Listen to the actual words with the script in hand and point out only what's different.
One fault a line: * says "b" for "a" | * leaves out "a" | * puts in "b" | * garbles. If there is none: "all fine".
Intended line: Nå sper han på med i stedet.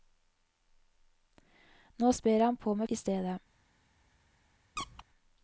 all fine